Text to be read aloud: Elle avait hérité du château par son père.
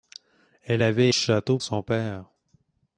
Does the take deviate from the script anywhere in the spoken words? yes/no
yes